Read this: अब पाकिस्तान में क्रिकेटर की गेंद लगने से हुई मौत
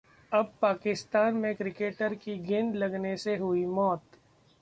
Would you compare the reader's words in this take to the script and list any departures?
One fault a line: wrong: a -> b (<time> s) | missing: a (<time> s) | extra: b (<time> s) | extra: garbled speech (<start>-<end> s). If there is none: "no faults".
no faults